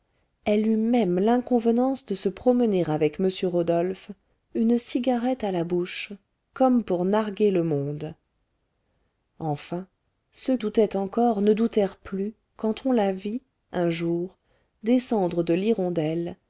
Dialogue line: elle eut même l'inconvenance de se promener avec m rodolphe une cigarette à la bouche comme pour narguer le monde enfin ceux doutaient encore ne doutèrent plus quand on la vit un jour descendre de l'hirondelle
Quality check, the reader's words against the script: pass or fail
pass